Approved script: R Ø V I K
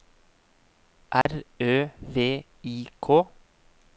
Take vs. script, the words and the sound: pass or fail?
fail